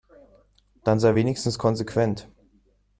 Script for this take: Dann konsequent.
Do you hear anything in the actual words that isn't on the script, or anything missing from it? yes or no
yes